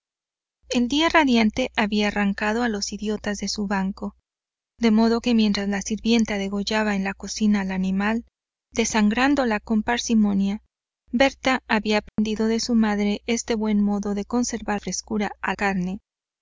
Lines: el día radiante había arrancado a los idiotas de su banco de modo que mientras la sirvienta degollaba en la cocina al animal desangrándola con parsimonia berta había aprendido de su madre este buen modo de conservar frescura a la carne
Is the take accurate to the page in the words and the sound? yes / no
no